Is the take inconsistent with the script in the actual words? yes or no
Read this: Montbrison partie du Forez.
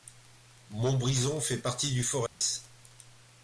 yes